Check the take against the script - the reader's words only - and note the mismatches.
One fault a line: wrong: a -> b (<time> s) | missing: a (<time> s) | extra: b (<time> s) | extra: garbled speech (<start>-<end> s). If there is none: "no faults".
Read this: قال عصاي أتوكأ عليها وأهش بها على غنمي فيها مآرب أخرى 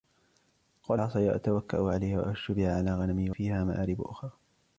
no faults